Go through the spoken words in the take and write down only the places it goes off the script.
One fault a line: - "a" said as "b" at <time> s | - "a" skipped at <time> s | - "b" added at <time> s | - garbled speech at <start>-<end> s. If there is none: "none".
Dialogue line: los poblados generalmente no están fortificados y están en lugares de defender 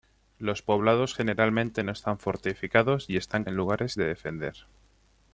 none